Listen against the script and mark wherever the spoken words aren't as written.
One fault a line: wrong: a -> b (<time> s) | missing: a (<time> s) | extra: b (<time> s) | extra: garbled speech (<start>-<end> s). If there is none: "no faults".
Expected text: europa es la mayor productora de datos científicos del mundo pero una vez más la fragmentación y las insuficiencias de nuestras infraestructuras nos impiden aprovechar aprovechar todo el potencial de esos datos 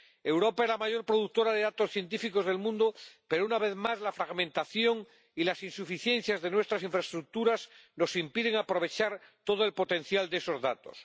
missing: aprovechar (9.2 s)